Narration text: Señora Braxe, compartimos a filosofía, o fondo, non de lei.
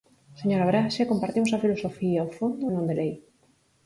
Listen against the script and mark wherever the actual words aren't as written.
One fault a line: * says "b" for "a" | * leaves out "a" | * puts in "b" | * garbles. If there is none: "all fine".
all fine